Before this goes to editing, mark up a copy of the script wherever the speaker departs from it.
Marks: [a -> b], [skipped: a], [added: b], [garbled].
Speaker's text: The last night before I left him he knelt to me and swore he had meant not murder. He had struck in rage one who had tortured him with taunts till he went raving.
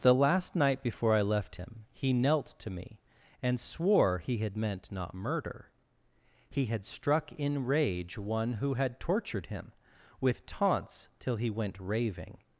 The last night before I left him he knelt to me and swore he had meant not murder. He had struck in rage one who had tortured him with taunts till he went raving.